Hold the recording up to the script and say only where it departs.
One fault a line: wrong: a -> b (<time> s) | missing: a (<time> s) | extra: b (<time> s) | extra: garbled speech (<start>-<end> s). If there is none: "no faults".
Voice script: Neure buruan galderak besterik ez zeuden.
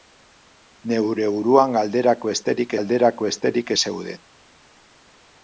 extra: galderak besterik (2.7 s)